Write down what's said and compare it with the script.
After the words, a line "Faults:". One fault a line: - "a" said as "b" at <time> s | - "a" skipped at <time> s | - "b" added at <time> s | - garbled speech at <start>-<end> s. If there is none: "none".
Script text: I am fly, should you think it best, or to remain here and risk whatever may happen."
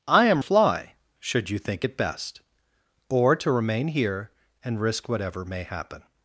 I am fly, should you think it best, or to remain here and risk whatever may happen."
Faults:
none